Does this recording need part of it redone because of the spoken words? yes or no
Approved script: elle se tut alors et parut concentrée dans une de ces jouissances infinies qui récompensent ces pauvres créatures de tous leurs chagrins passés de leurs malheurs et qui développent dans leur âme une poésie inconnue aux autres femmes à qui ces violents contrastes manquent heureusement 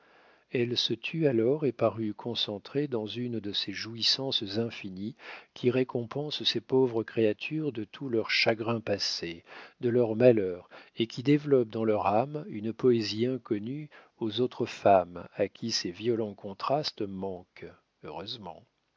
no